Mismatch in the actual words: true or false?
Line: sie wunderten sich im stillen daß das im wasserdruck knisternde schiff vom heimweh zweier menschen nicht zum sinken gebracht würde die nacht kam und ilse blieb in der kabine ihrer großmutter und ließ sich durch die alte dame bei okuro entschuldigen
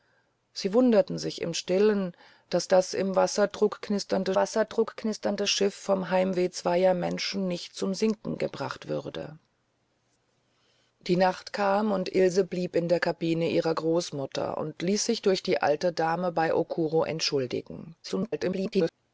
true